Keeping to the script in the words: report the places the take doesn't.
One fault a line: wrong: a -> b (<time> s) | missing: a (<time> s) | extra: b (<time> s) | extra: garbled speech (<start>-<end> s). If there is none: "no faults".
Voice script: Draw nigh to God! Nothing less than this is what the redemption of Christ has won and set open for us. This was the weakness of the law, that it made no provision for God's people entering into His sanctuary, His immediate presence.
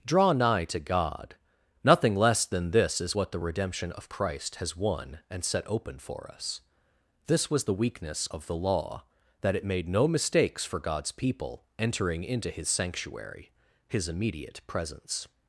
wrong: provision -> mistakes (10.1 s)